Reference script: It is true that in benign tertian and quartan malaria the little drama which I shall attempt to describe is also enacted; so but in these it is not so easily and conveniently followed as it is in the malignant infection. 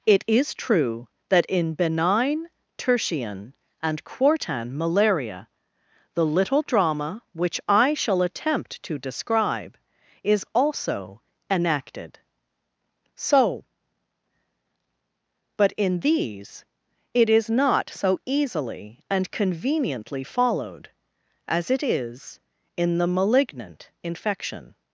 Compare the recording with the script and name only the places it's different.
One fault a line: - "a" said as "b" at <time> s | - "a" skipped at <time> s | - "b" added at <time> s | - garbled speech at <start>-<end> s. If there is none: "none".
none